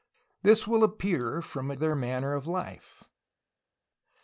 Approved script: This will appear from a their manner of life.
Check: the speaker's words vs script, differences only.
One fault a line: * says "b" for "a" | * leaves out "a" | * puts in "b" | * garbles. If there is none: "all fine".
all fine